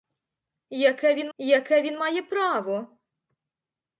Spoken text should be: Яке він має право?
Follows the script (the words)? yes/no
no